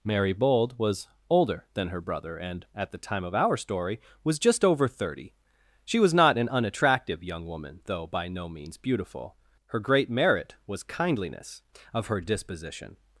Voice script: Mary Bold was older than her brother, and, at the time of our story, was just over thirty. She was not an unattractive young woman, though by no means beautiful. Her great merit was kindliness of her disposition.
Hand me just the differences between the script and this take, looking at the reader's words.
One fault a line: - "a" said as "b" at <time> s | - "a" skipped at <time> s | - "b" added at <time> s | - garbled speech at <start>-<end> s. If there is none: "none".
none